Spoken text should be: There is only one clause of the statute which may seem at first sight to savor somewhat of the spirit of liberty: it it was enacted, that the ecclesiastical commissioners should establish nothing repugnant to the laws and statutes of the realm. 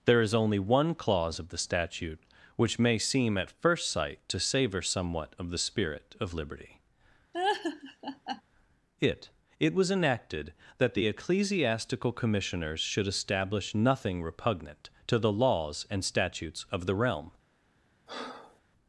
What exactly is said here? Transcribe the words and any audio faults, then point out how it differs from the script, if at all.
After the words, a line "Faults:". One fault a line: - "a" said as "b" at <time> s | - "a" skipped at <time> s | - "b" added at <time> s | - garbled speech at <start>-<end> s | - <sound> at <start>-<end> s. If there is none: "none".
There is only one clause of the statute which may seem at first sight to savor somewhat of the spirit of liberty: it it was enacted, that the ecclesiastical commissioners should establish nothing repugnant to the laws and statutes of the realm.
Faults:
- laugh at 7.3-8.4 s
- breath at 18.1-18.6 s